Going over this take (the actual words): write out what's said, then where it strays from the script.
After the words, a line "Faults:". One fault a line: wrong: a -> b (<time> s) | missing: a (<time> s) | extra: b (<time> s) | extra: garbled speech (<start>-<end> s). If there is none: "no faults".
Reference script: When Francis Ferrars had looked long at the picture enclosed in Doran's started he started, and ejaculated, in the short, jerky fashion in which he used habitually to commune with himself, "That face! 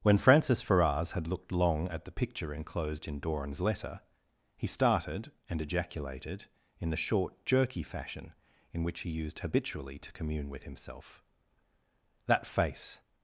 When Francis Ferrars had looked long at the picture enclosed in Doran's letter he started, and ejaculated, in the short, jerky fashion in which he used habitually to commune with himself, "That face!
Faults:
wrong: started -> letter (3.6 s)